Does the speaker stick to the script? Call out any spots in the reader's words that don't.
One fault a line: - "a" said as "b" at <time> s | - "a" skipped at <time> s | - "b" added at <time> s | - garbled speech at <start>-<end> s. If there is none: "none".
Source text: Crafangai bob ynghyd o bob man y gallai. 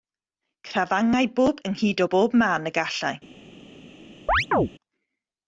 none